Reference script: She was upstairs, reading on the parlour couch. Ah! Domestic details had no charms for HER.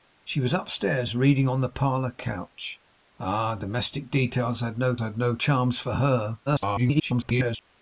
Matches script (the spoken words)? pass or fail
fail